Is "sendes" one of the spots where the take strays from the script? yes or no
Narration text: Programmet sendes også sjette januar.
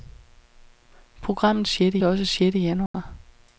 yes